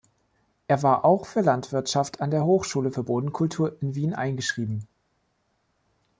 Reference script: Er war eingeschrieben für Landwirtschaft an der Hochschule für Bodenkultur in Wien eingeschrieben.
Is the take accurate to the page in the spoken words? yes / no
no